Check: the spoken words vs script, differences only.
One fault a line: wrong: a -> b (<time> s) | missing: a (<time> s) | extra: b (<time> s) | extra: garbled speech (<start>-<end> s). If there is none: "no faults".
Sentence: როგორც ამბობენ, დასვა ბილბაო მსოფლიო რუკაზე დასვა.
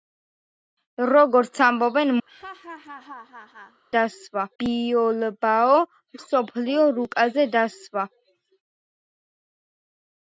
no faults